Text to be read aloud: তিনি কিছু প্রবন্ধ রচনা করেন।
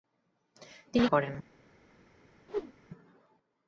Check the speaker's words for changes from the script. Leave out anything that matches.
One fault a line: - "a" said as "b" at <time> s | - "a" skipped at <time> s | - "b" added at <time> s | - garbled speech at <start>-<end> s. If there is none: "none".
- "কিছু প্রবন্ধ রচনা" skipped at 1.1 s